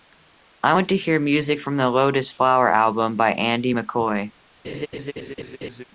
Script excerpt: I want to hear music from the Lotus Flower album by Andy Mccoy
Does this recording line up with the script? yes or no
yes